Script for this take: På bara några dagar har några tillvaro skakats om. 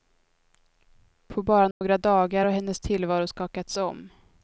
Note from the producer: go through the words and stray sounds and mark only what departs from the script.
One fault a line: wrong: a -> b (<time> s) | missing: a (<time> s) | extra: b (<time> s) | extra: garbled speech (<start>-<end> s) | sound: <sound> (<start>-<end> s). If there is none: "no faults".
sound: dropout (1.7-1.8 s)
wrong: några -> hennes (2.5 s)